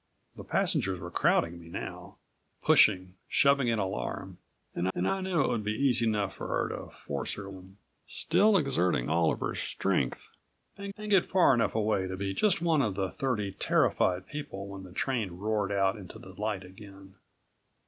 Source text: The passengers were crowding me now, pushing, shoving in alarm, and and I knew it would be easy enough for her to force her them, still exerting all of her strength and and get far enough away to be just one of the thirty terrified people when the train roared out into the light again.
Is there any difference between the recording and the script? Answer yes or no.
no